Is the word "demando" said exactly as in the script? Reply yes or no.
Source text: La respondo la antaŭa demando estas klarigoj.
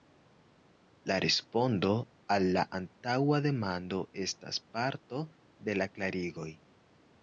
yes